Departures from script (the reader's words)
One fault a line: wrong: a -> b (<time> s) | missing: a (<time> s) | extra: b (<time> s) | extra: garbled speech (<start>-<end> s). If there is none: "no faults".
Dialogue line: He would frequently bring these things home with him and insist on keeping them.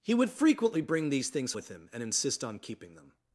missing: home (1.5 s)